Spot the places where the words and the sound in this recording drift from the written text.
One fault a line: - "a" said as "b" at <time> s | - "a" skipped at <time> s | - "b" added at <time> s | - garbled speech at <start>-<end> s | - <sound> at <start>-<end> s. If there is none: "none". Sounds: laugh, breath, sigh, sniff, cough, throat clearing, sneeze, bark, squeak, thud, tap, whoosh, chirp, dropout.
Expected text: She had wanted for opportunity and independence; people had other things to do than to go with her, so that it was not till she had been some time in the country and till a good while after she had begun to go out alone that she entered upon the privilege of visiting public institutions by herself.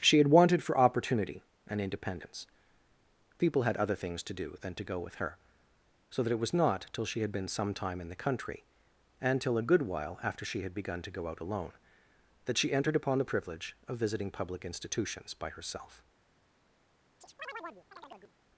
- chirp at 17.2-18.3 s